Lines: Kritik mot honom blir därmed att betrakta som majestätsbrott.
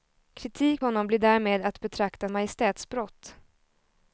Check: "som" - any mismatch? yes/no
yes